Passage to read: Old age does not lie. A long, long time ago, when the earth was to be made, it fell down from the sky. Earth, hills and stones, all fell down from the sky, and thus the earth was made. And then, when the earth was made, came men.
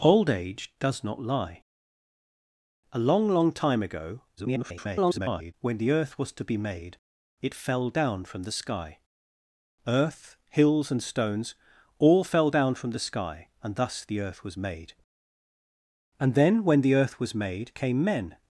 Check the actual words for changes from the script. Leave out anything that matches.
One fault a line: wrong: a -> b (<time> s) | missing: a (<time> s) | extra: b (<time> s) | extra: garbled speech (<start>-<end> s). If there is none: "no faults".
extra: garbled speech (4.4-5.5 s)